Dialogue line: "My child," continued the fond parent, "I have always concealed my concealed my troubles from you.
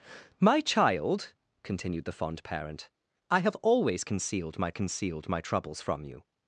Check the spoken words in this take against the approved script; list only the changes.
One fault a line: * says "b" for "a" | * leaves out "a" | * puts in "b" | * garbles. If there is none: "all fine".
all fine